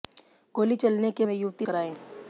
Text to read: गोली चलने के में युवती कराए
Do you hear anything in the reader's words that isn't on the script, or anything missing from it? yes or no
no